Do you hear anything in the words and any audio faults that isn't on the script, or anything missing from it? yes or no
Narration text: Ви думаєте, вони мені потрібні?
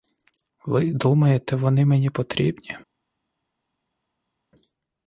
no